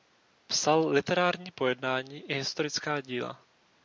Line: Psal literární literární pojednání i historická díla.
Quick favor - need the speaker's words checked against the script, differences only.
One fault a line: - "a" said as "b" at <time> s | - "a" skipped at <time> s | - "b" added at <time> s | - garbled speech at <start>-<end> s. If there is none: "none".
- "literární" skipped at 1.5 s